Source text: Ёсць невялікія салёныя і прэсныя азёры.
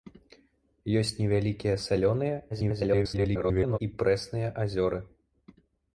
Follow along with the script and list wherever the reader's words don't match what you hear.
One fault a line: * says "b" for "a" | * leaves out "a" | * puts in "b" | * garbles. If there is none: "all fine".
* garbles